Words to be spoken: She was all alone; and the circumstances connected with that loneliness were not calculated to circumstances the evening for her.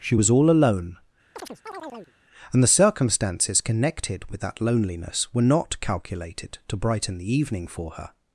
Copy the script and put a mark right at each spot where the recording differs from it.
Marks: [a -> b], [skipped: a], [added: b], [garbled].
She was all alone; and the circumstances connected with that loneliness were not calculated to [circumstances -> brighten] the evening for her.